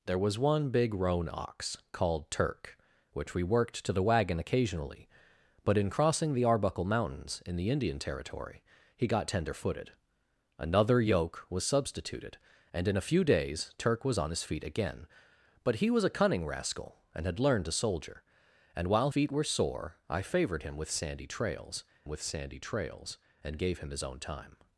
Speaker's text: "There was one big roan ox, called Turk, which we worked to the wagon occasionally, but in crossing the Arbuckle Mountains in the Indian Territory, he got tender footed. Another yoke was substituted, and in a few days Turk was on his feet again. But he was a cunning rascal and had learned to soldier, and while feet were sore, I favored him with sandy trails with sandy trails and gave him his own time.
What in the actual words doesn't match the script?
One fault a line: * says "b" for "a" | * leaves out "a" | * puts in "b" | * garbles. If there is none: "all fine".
all fine